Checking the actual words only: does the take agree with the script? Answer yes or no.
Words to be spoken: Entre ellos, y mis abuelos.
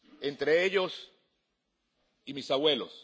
yes